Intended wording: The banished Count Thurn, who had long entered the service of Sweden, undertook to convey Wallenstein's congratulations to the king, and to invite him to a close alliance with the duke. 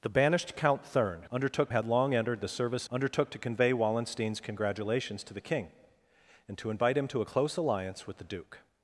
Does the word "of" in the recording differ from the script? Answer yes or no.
yes